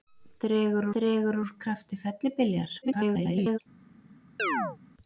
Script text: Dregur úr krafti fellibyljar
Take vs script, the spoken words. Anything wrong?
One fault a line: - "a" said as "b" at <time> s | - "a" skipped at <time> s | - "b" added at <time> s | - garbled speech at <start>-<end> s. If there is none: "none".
- "dregur" added at 0.9 s
- garbled speech at 2.8-3.6 s